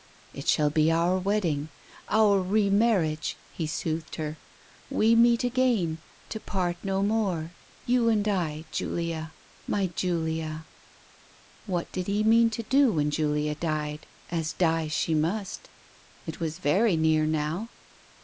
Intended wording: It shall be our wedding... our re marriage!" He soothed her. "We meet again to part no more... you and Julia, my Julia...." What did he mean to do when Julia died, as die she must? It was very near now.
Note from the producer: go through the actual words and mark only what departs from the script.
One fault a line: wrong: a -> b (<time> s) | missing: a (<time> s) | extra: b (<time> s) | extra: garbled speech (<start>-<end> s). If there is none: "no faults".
extra: I (8.3 s)